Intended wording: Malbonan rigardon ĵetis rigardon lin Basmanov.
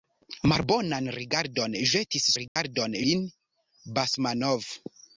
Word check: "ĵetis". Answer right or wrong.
right